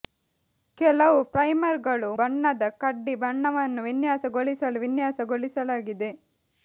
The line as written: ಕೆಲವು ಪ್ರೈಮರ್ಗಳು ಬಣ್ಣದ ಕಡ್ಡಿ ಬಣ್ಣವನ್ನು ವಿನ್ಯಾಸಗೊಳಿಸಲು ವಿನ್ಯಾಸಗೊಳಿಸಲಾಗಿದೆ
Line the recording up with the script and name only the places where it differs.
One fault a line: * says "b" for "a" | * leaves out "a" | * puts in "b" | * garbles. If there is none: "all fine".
all fine